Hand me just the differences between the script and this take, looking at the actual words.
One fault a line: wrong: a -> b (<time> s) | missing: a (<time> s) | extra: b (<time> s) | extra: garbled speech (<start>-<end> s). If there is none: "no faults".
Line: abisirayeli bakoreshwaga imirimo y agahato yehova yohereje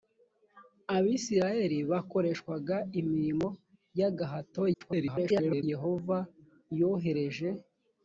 extra: garbled speech (4.7-5.6 s)